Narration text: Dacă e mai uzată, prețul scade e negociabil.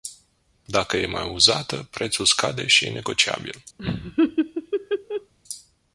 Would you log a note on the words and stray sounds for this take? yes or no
yes